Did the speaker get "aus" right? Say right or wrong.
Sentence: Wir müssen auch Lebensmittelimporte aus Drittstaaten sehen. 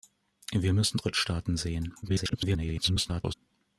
wrong